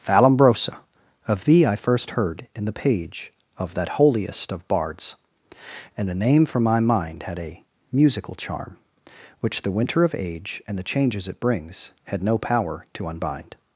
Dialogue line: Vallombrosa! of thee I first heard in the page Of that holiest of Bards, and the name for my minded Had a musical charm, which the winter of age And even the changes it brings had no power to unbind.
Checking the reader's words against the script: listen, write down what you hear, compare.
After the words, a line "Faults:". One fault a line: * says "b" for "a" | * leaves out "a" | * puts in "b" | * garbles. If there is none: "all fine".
Vallombrosa! of thee I first heard in the page Of that holiest of Bards, and the name for my mind Had a musical charm, which the winter of age And the changes it brings had no power to unbind.
Faults:
* says "mind" for "minded"
* leaves out "even"